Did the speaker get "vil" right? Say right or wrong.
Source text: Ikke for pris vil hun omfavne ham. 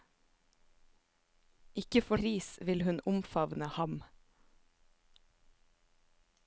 right